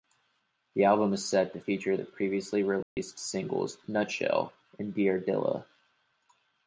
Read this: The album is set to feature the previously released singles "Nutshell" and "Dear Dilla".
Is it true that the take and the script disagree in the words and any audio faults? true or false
true